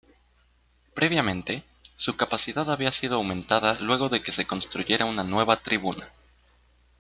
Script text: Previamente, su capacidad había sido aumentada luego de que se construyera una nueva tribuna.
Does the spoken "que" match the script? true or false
true